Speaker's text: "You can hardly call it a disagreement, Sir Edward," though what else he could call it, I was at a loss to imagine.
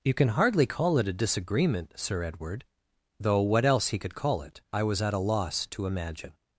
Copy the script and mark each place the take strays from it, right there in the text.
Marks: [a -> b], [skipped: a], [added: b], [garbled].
"You can hardly call it a disagreement, Sir Edward," though what else he could call it, I was at a loss to imagine.